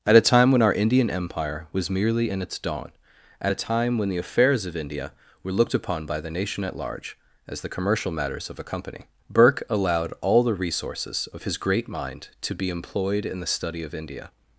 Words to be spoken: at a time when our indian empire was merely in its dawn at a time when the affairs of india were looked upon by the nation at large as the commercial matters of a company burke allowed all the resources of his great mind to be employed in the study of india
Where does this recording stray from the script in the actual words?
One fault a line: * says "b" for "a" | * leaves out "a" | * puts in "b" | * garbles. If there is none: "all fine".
all fine